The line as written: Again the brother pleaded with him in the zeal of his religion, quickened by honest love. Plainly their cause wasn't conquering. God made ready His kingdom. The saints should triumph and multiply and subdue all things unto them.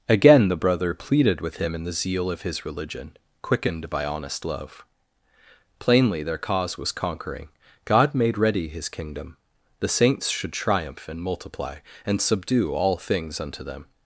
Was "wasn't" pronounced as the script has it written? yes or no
no